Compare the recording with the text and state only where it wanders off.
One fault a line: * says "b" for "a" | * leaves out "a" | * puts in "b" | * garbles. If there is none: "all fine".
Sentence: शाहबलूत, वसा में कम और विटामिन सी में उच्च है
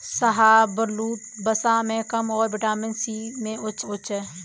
* puts in "उच्च"